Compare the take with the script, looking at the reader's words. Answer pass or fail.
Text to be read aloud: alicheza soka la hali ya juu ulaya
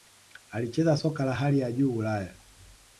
pass